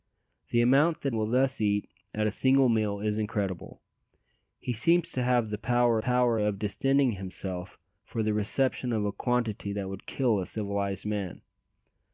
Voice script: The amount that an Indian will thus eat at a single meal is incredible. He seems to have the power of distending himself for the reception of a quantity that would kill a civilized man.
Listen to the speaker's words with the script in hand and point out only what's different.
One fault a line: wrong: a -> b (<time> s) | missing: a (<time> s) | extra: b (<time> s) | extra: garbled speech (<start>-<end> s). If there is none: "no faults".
missing: an Indian (1.1 s)
extra: power (6.0 s)